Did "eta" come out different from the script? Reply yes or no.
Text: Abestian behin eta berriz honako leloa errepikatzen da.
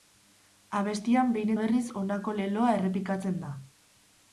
yes